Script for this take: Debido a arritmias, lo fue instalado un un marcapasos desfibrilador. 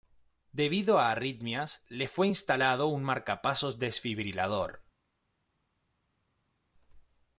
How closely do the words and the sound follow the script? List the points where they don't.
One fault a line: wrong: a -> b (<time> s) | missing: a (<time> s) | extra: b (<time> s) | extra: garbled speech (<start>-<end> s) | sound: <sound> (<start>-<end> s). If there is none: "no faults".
wrong: lo -> le (1.9 s)
missing: un (3.0 s)